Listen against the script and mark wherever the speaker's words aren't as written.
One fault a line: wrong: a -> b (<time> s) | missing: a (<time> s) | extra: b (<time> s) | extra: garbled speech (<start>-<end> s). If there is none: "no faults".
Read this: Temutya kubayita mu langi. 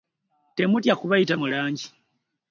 no faults